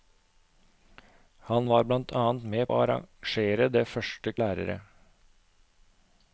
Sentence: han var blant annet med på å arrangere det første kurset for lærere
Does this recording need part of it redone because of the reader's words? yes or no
yes